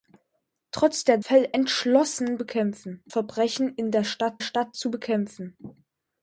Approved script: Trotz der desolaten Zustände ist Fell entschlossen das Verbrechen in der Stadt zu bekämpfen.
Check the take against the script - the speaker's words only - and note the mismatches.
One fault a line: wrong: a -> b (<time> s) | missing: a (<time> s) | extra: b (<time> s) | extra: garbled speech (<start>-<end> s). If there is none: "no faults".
missing: desolaten Zustände ist (1.2 s)
wrong: das -> bekämpfen (2.4 s)
extra: Stadt (4.4 s)